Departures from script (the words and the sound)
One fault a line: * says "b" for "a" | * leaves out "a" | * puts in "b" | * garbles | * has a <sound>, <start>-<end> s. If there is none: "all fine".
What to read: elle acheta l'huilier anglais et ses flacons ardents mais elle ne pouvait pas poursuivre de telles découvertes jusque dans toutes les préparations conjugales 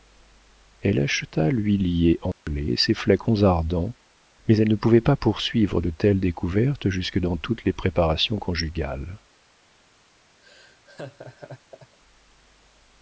* has a dropout, 2.3-2.5 s
* has a laugh, 10.4-12.0 s